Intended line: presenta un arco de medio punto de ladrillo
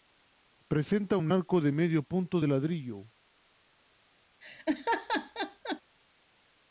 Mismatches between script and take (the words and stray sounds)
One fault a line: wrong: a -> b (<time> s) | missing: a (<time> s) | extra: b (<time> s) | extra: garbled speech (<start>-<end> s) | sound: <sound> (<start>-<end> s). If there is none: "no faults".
sound: laugh (4.4-5.8 s)